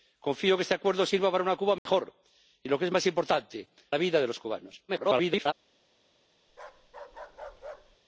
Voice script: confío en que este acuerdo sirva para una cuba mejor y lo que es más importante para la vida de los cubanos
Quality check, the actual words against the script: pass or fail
fail